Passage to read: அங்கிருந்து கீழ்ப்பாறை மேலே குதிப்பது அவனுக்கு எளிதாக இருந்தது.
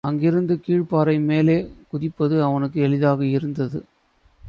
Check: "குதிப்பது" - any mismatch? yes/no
no